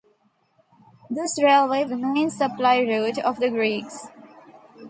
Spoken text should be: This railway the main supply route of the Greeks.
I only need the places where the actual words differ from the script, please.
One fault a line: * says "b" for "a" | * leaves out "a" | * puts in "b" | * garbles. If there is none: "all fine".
all fine